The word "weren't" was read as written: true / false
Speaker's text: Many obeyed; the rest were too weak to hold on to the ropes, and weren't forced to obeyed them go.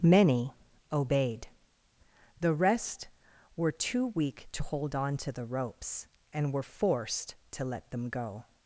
false